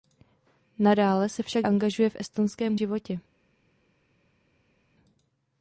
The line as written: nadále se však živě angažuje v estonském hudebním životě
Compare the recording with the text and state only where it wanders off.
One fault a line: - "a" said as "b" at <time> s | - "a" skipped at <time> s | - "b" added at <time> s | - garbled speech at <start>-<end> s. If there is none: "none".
- "živě" skipped at 1.7 s
- "hudebním" skipped at 2.8 s